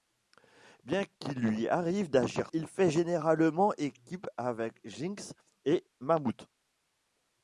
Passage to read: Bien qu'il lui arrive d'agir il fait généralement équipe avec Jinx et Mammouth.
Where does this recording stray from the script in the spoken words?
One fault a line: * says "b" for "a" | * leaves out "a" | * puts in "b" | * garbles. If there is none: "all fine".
all fine